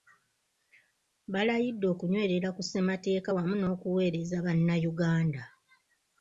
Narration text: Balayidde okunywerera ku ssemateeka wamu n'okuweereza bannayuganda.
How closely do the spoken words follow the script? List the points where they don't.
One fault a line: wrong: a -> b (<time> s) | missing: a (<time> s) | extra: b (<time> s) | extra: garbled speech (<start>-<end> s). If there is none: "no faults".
no faults